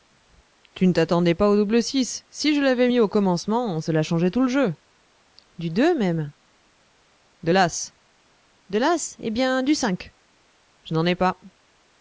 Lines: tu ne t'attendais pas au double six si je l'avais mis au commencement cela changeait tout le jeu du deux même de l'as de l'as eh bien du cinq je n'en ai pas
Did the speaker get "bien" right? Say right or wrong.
right